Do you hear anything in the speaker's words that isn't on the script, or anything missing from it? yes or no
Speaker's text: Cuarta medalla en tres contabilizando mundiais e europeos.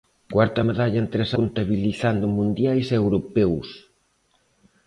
no